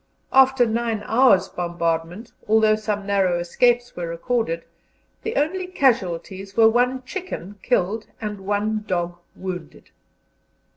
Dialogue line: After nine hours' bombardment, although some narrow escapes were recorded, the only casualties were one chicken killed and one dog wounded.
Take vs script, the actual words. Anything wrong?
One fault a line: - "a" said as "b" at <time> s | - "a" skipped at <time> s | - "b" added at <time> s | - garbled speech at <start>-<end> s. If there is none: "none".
none